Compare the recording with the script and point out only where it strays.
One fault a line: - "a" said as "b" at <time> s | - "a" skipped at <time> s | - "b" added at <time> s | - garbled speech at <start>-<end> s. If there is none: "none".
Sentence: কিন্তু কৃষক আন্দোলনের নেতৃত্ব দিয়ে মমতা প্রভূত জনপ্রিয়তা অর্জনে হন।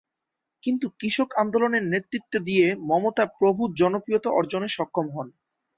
- "সক্ষম" added at 4.7 s